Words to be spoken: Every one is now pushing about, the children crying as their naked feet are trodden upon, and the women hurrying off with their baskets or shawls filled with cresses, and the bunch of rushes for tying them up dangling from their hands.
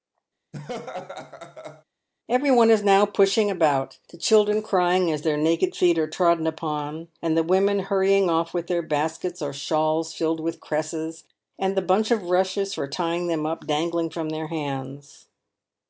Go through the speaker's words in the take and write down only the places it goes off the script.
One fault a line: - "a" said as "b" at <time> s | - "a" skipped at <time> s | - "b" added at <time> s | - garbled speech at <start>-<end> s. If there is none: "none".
none